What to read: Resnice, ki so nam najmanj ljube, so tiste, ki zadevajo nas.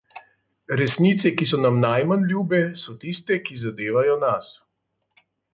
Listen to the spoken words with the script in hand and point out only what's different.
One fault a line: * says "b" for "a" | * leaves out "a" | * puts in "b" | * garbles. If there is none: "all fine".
all fine